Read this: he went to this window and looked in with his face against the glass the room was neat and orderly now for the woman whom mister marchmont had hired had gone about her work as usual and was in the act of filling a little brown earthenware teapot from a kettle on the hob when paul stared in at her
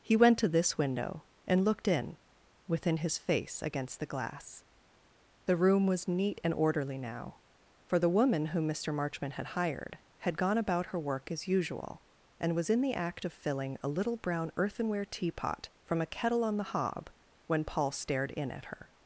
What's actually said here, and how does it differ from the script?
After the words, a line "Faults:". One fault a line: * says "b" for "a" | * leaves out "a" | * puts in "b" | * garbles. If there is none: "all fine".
he went to this window and looked in within his face against the glass the room was neat and orderly now for the woman whom mister marchmont had hired had gone about her work as usual and was in the act of filling a little brown earthenware teapot from a kettle on the hob when paul stared in at her
Faults:
* says "within" for "with"